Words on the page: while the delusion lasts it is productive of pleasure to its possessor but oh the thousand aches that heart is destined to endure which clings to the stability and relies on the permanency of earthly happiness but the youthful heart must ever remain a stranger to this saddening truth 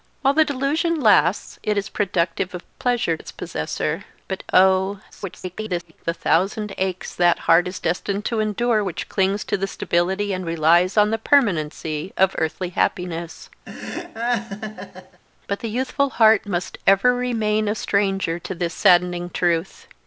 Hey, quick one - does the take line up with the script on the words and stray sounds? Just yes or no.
no